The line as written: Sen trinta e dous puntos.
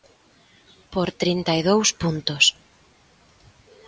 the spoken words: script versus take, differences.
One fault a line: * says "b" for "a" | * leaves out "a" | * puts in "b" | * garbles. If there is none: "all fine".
* says "Por" for "Sen"